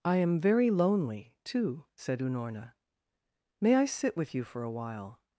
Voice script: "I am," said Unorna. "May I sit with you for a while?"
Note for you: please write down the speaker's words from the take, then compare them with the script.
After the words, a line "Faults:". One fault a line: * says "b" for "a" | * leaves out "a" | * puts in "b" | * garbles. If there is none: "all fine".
"I am very lonely, too," said Unorna. "May I sit with you for a while?"
Faults:
* puts in "very lonely too"